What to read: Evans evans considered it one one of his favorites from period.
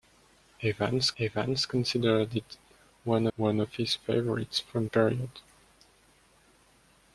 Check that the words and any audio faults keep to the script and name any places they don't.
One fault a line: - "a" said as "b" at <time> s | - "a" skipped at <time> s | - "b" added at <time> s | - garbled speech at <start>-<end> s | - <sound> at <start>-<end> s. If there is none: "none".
none